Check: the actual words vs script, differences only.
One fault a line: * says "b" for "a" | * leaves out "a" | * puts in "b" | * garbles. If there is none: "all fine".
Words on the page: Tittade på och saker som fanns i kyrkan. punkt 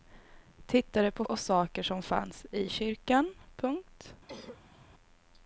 all fine